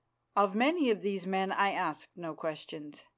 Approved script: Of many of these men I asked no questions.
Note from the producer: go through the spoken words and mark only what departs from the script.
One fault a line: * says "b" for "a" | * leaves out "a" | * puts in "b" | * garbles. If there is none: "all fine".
all fine